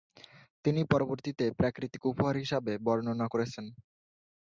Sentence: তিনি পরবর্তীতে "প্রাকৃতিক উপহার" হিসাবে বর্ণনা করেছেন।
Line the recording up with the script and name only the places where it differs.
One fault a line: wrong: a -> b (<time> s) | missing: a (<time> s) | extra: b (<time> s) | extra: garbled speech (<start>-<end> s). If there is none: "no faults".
no faults